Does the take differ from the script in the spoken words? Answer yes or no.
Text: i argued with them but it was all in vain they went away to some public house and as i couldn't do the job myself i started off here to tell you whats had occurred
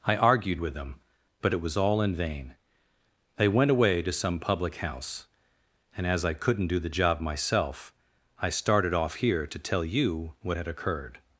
yes